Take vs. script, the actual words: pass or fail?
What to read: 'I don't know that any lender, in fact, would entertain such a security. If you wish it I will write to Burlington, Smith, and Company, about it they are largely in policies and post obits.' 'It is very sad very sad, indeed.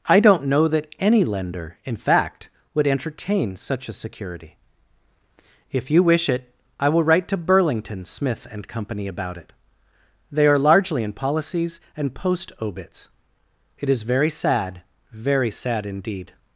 pass